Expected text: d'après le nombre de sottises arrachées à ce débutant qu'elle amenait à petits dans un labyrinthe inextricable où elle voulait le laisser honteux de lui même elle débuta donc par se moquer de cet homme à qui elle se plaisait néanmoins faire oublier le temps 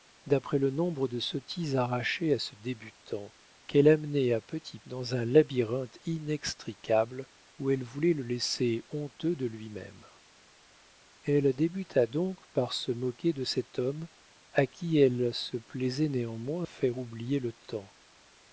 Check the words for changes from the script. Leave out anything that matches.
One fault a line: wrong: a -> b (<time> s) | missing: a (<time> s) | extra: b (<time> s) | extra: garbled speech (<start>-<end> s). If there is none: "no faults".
no faults